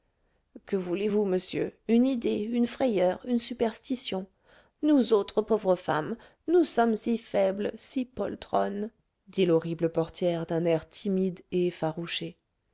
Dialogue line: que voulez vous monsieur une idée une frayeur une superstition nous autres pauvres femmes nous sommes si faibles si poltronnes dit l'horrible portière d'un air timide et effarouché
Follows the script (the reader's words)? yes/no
yes